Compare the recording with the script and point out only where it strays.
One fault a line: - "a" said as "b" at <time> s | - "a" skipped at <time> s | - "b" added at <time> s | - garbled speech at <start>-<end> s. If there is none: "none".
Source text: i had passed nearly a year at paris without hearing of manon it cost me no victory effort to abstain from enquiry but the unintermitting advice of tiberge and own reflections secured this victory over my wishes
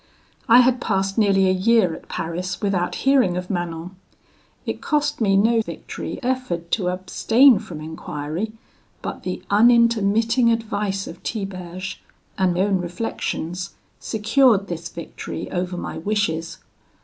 none